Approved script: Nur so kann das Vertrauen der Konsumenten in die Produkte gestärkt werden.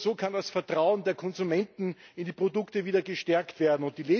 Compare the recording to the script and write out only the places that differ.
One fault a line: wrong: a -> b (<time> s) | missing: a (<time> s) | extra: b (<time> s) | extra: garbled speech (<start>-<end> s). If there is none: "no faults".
extra: wieder (2.9 s)